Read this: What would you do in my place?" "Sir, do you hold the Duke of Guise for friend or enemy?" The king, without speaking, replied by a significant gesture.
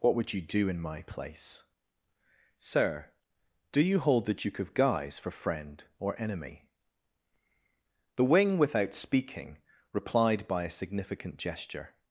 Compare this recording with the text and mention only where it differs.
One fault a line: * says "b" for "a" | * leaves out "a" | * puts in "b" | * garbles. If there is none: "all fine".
* says "wing" for "king"